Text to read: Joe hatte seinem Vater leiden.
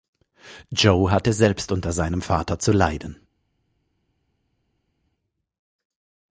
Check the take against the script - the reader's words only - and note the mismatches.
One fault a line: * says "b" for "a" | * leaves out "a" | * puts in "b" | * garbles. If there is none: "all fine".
* puts in "selbst unter"
* puts in "zu"